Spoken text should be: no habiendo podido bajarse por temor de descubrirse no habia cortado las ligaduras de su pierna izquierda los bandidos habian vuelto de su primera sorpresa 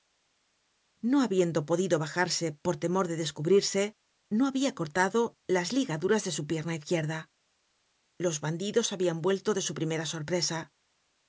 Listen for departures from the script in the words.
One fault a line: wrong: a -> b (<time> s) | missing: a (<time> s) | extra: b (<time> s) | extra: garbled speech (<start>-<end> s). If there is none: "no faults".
no faults